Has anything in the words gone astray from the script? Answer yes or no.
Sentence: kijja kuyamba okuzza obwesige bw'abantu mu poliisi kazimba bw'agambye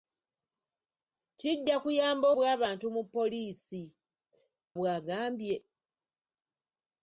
yes